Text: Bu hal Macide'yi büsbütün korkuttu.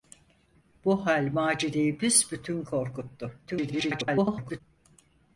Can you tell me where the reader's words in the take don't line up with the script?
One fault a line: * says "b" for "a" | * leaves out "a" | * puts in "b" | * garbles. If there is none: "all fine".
* garbles